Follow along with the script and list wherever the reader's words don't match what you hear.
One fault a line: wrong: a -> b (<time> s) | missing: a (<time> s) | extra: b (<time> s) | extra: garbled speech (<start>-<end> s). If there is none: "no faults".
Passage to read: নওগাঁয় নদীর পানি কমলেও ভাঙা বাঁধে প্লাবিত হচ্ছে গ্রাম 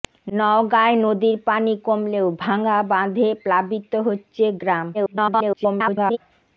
extra: garbled speech (4.9-6.2 s)